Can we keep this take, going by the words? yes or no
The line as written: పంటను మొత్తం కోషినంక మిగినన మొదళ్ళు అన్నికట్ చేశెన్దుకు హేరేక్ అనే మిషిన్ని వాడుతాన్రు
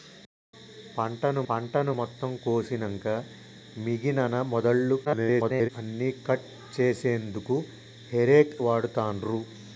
no